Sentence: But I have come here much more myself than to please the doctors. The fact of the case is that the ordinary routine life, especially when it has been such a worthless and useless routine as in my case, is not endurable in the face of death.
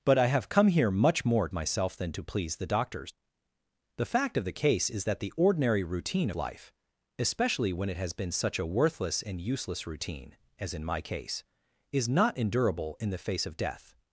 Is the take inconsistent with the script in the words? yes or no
no